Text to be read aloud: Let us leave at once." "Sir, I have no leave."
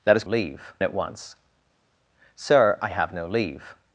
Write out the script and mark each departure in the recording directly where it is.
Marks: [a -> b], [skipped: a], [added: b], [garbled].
Let us leave at once." "Sir, I have no leave."